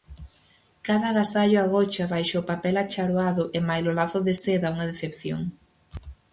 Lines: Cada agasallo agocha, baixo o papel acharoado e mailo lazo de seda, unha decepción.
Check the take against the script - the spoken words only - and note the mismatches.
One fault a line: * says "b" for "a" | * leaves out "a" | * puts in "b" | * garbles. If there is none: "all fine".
all fine